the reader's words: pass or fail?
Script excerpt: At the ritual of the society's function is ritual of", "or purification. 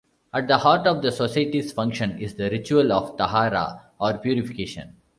fail